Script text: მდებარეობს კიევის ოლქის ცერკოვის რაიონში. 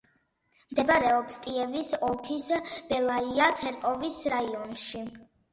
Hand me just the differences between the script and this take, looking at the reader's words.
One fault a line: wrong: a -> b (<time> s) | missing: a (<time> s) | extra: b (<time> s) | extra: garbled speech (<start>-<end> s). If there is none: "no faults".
extra: ბელაია (2.9 s)